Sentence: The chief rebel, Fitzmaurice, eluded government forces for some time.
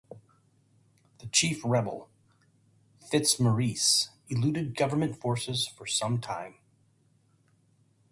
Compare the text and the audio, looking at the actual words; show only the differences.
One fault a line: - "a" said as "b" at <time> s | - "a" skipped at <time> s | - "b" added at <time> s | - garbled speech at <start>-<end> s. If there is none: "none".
none